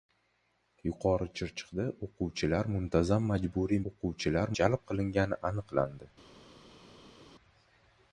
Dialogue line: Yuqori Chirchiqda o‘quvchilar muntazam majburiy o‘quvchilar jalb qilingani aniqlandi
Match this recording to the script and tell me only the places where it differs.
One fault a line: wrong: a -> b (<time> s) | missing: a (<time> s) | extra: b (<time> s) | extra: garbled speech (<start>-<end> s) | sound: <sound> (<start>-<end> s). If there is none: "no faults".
no faults